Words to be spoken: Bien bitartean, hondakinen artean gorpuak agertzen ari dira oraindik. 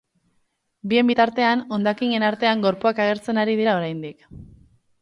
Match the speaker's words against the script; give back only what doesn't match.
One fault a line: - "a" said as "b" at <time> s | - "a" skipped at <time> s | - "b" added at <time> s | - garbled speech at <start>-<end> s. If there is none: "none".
none